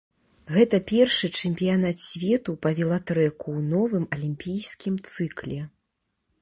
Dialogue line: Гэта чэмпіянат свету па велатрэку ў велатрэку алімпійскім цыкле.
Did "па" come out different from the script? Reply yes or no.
no